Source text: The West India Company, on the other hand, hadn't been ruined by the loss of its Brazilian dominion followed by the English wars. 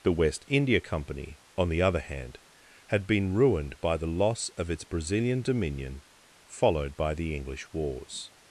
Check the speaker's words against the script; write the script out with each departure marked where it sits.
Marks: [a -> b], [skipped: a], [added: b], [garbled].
The West India Company, on the other hand, [hadn't -> had] been ruined by the loss of its Brazilian dominion followed by the English wars.